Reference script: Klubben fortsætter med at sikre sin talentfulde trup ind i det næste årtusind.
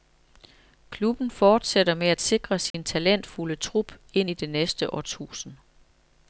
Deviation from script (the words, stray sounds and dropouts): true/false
true